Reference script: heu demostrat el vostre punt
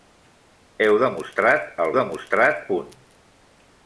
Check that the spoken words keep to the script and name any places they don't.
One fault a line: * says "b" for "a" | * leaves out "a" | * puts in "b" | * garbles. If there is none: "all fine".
* says "demostrat" for "vostre"